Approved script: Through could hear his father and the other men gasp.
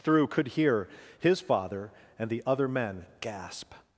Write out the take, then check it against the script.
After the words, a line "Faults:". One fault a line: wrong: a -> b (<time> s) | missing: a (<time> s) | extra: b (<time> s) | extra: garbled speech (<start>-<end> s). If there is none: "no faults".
Through could hear his father and the other men gasp.
Faults:
no faults